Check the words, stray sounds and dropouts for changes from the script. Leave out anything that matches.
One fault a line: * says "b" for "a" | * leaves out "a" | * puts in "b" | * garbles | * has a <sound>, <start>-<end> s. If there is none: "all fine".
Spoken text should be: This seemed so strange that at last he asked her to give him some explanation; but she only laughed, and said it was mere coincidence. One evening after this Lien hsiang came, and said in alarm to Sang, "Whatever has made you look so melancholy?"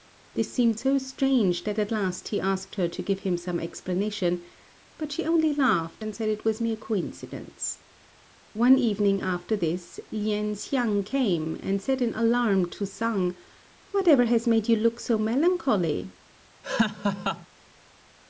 * has a laugh, 16.6-17.5 s